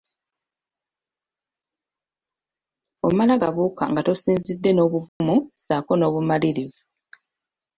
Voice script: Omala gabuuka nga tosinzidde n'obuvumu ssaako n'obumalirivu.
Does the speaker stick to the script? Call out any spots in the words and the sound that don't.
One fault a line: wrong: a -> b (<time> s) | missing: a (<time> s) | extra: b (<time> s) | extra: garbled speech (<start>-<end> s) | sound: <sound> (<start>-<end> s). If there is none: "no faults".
sound: dropout (5.1-5.2 s)